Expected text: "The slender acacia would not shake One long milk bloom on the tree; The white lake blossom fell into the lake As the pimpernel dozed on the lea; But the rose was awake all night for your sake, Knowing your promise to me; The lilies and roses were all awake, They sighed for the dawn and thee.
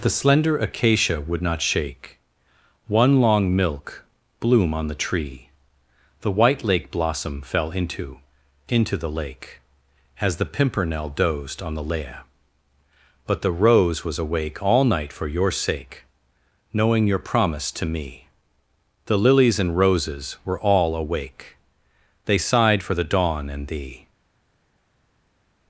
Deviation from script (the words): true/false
true